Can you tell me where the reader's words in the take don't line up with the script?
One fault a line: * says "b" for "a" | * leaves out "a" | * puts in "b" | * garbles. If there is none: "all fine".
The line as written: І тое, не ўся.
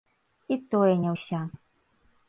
all fine